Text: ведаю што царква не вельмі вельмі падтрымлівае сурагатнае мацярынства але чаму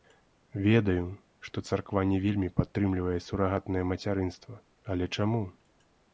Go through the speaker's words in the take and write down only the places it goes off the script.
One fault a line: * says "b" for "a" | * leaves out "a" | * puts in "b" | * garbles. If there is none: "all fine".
* leaves out "вельмі"